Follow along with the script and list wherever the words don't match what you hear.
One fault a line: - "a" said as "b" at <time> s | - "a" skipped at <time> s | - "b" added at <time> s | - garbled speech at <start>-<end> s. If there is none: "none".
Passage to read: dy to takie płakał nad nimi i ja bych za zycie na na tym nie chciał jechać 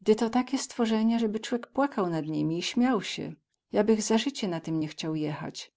- "stworzenia zeby cłek" added at 0.6 s
- "śmiał sie" added at 2.6 s
- "na" skipped at 4.6 s